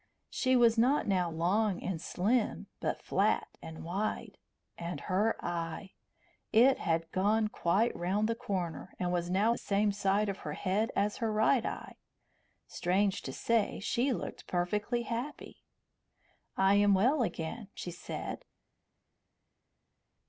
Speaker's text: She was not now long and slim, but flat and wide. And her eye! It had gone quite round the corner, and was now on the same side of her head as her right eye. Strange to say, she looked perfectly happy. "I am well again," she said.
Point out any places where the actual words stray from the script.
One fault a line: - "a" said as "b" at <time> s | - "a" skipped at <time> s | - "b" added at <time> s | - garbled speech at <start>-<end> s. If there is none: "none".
- "on" skipped at 9.6 s